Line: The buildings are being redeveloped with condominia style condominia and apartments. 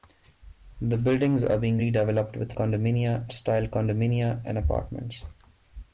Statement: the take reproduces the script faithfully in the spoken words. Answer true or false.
true